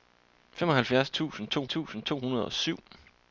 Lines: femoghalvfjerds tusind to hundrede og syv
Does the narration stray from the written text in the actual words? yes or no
yes